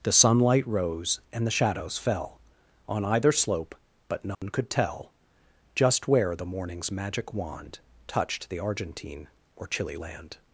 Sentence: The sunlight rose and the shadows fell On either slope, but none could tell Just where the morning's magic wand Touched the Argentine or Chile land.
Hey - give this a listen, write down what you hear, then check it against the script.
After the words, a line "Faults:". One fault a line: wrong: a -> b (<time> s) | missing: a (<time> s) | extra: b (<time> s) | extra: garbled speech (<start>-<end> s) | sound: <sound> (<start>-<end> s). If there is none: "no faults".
The sunlight rose and the shadows fell On either slope, but none could tell Just where the morning's magic wand Touched the Argentine or Chile land.
Faults:
sound: dropout (4.3-4.4 s)